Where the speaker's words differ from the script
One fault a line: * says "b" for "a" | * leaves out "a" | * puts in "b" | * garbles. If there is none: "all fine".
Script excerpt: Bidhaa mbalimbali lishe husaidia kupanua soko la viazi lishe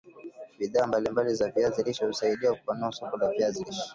* puts in "za viazi"